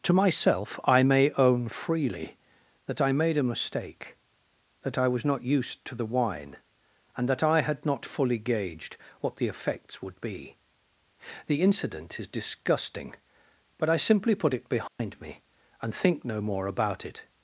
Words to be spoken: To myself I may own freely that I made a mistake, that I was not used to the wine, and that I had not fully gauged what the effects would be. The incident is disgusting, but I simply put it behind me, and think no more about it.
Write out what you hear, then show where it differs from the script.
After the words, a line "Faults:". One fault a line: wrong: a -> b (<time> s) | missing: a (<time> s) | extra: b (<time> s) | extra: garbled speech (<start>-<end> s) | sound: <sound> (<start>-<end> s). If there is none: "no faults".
To myself I may own freely that I made a mistake, that I was not used to the wine, and that I had not fully gauged what the effects would be. The incident is disgusting, but I simply put it behind me, and think no more about it.
Faults:
sound: dropout (14.9-15.0 s)